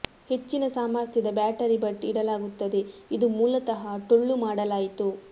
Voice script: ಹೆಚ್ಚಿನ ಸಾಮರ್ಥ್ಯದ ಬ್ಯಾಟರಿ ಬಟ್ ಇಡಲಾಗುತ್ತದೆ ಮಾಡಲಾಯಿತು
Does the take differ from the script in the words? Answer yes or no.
yes